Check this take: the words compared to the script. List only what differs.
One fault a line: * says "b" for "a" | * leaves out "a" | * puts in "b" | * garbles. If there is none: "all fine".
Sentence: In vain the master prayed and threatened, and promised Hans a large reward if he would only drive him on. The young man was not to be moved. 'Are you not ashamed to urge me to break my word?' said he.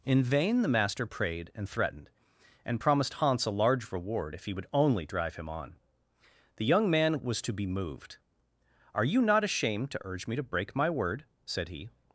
* leaves out "not"